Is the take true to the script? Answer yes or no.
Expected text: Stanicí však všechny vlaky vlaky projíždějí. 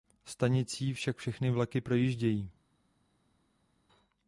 no